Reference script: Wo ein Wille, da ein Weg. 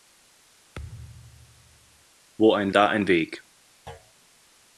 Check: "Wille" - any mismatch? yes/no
yes